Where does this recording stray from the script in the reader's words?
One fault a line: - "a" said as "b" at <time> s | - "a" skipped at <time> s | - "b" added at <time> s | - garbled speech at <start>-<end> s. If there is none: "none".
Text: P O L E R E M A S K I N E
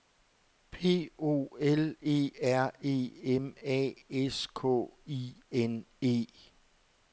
none